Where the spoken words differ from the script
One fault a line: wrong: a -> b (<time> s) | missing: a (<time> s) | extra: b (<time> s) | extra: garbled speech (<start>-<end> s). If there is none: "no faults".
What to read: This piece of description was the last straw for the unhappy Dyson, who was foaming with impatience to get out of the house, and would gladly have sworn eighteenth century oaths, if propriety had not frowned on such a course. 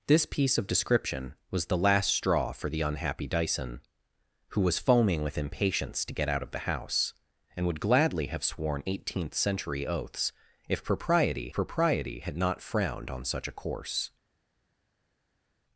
extra: propriety (11.5 s)